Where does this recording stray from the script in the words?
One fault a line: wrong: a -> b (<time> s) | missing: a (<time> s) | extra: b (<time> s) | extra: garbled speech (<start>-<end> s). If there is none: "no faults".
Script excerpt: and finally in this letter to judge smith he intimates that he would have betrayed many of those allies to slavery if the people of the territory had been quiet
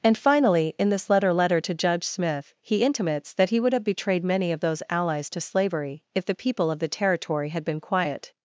extra: letter (1.3 s)